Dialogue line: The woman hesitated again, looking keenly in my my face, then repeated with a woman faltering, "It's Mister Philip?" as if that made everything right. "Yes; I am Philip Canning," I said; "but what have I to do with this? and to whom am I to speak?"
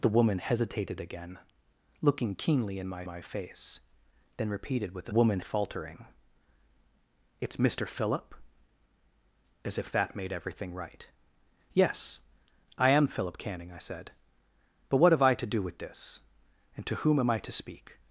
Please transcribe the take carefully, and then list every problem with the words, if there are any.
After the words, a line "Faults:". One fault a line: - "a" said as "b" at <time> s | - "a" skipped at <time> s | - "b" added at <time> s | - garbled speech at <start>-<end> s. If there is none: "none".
The woman hesitated again, looking keenly in my my face, then repeated with a woman faltering, "It's Mister Philip?" as if that made everything right. "Yes; I am Philip Canning," I said; "but what have I to do with this? and to whom am I to speak?"
Faults:
none